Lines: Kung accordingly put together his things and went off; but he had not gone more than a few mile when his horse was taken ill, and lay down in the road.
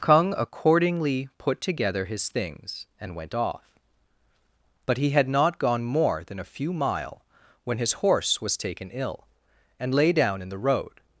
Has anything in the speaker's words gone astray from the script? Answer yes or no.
no